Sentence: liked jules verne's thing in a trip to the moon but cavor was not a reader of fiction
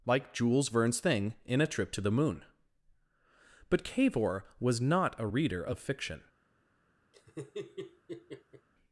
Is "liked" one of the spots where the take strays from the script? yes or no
yes